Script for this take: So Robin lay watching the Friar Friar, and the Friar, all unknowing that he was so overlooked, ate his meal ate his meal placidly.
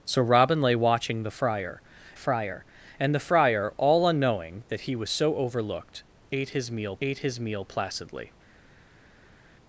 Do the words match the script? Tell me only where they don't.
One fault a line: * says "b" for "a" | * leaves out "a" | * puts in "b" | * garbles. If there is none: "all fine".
all fine